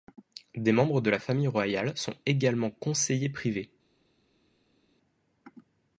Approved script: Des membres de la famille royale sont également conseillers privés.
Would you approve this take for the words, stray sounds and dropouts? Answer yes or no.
yes